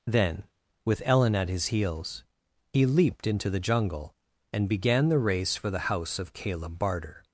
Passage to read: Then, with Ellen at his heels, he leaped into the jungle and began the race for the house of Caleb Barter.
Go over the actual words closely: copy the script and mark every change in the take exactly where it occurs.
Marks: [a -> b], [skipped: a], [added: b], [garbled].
Then, with Ellen at his heels, he leaped into the jungle and began the race for the house of Caleb Barter.